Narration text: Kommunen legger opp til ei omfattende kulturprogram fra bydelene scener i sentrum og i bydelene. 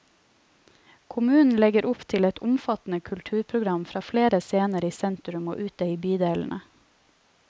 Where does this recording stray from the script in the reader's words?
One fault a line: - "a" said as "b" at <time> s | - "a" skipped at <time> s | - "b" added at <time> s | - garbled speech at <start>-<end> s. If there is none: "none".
- "ei" said as "et" at 2.3 s
- "bydelene" said as "flere" at 4.1 s
- "ute" added at 5.7 s